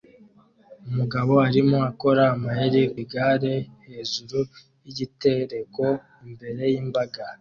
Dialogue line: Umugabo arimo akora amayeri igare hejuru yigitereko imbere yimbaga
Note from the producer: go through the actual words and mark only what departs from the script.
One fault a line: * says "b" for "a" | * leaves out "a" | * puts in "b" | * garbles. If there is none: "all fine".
all fine